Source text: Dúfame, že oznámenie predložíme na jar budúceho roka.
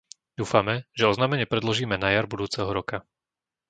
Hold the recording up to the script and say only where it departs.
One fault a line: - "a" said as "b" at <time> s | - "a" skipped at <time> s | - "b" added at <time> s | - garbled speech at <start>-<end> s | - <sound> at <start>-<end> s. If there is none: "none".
none